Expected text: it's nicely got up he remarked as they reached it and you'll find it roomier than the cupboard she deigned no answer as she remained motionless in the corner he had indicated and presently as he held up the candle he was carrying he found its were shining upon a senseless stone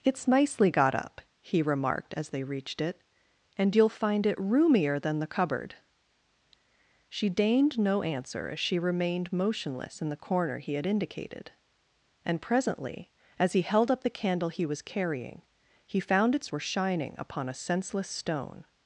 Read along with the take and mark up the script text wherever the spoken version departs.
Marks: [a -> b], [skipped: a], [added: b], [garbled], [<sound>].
it's nicely got up he remarked as they reached it and you'll find it roomier than the cupboard she deigned no answer as she remained motionless in the corner he had indicated and presently as he held up the candle he was carrying he found its were shining upon a senseless stone